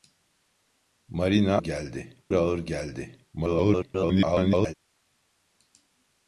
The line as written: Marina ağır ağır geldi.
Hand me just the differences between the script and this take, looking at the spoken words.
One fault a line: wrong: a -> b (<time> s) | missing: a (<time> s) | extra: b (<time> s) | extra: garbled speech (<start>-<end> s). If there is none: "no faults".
wrong: ağır -> geldi (1.6 s)
extra: garbled speech (3.3-4.7 s)